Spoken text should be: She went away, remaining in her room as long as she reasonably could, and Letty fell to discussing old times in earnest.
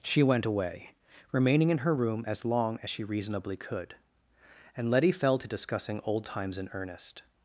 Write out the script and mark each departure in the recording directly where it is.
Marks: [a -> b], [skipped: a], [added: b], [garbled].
She went away, remaining in her room as long as she reasonably could, and Letty fell to discussing old times in earnest.